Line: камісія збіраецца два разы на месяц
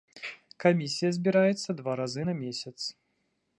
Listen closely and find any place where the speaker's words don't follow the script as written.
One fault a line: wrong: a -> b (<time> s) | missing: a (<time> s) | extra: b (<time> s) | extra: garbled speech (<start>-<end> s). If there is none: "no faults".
no faults